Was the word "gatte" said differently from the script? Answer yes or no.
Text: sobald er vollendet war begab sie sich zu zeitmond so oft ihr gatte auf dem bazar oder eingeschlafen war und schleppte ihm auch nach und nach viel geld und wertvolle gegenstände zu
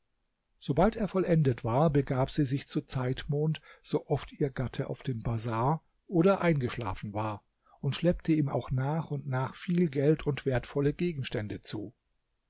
no